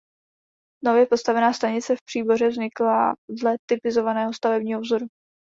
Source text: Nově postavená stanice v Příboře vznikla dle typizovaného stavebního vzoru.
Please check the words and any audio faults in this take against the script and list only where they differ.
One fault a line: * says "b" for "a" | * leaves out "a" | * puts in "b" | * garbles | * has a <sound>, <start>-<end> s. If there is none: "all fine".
all fine